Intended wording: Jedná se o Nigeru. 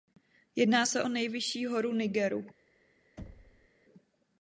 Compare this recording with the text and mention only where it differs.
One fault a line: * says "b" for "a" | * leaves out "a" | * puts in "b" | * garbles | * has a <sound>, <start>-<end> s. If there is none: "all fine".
* puts in "nejvyšší horu"
* has a thud, 3.2-3.7 s